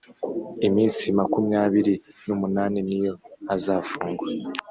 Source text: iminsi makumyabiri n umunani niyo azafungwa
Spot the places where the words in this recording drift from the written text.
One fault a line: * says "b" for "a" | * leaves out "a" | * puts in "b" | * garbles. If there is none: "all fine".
all fine